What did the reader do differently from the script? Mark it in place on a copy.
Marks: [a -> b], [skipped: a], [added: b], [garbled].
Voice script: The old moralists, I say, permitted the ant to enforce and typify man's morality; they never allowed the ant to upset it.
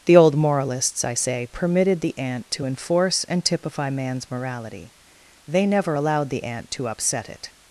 The old moralists, I say, permitted the ant to enforce and typify man's morality; they never allowed the ant to upset it.